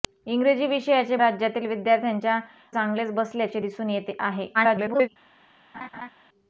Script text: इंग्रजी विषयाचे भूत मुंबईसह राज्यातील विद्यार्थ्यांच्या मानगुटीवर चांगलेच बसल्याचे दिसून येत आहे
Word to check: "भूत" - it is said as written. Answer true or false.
false